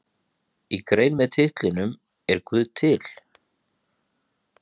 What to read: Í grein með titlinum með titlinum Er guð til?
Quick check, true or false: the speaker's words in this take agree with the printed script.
false